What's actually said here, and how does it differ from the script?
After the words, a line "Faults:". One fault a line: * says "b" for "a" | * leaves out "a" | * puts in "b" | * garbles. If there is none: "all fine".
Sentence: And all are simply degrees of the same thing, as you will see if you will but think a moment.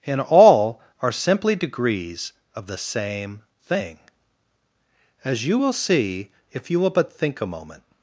And all are simply degrees of the same thing, as you will see if you will but think a moment.
Faults:
all fine